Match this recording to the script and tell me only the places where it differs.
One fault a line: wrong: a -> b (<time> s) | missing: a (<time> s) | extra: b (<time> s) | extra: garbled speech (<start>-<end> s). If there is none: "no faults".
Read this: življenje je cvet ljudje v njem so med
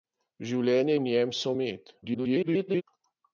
missing: je cvet ljudje (0.9 s)
extra: garbled speech (2.0-2.8 s)